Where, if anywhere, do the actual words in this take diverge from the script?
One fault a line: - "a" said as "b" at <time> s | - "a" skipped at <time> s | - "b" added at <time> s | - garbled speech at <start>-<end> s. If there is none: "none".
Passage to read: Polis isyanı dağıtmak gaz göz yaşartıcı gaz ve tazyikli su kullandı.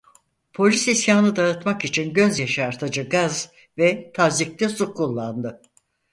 - "gaz" said as "için" at 1.9 s